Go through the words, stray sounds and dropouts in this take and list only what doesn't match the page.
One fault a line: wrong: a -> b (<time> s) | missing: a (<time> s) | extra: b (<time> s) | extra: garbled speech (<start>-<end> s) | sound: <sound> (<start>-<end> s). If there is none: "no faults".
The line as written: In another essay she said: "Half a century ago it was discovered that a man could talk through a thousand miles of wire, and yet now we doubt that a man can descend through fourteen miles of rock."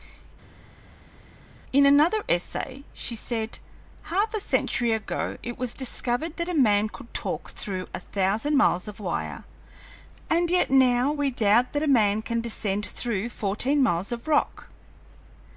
no faults